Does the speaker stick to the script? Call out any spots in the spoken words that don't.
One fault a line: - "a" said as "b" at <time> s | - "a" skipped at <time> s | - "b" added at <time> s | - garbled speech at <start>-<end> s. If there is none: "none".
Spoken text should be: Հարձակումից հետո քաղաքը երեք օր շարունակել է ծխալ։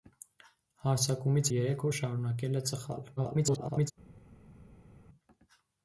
- "հետո քաղաքը" skipped at 1.5 s
- garbled speech at 3.2-3.9 s